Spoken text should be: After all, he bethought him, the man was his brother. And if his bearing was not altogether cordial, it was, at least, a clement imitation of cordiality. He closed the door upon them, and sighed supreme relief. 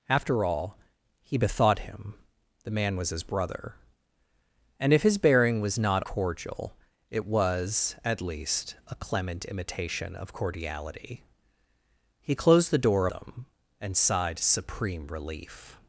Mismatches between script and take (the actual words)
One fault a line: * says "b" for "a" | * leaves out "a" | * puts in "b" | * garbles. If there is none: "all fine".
* leaves out "altogether"
* leaves out "upon"